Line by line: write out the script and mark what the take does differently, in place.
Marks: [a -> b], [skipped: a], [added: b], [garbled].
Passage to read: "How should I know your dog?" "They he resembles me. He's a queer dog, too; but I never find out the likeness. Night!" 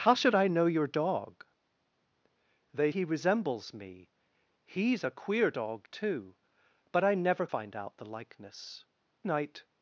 "How should I know your dog?" "They he resembles me. He's a queer dog, too; but I never find out the likeness. Night!"